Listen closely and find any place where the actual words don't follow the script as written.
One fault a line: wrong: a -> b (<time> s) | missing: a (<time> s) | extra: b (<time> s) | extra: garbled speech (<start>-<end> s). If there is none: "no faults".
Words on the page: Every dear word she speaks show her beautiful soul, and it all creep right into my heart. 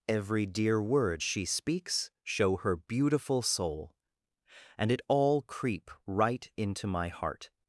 no faults